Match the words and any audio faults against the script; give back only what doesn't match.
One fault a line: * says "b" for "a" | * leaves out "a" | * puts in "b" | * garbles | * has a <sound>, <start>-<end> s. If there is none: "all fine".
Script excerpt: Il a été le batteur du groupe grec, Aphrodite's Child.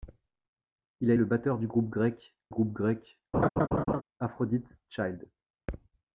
* leaves out "été"
* puts in "groupe grec"
* has a laugh, 3.3-4.0 s